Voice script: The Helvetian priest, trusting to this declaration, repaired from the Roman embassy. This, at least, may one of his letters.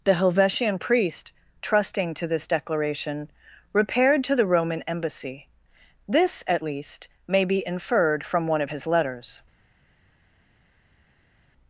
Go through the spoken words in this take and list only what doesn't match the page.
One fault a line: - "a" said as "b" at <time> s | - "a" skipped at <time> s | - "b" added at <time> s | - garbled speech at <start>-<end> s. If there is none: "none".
- "from" said as "to" at 4.2 s
- "be inferred from" added at 7.4 s